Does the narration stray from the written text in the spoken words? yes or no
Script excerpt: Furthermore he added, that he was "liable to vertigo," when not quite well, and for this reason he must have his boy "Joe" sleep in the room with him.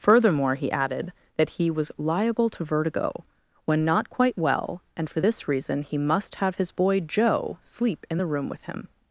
no